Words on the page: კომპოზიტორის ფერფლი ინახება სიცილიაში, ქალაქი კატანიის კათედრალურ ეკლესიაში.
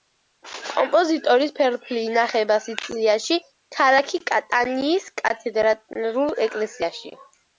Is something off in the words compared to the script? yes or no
no